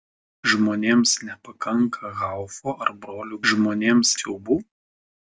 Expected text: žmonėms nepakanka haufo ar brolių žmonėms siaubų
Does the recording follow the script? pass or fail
pass